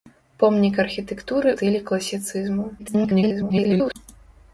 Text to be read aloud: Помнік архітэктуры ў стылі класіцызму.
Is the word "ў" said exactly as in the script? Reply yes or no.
no